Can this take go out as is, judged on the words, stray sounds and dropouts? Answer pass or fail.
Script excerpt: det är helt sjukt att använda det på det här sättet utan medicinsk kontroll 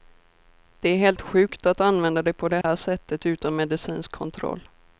fail